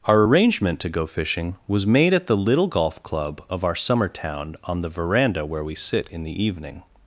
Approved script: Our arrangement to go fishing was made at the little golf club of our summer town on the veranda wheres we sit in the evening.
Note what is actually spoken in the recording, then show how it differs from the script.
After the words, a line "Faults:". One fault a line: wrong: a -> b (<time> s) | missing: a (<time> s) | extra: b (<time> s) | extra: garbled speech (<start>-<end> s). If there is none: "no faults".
Our arrangement to go fishing was made at the little golf club of our summer town on the veranda where we sit in the evening.
Faults:
wrong: wheres -> where (5.4 s)